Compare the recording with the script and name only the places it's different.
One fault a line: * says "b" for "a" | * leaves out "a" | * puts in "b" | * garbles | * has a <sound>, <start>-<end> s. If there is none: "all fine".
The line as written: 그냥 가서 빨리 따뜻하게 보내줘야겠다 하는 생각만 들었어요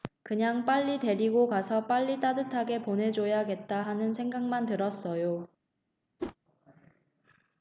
* puts in "빨리 데리고"
* has a whoosh, 6.2-6.4 s